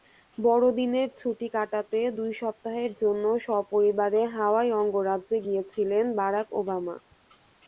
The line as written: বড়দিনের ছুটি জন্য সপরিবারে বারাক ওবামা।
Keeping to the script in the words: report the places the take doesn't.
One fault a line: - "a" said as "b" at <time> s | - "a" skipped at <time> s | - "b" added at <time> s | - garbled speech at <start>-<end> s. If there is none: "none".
- "কাটাতে দুই সপ্তাহের" added at 1.6 s
- "হাওয়াই অঙ্গরাজ্যে গিয়েছিলেন" added at 4.4 s